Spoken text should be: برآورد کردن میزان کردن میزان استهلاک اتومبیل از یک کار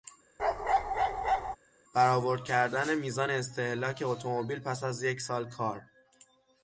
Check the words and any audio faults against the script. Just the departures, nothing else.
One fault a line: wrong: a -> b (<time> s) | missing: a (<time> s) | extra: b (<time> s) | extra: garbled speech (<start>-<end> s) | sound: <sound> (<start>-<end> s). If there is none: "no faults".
sound: bark (0.4-1.6 s)
missing: کردن میزان (3.3 s)
extra: پس (4.6 s)
extra: سال (5.2 s)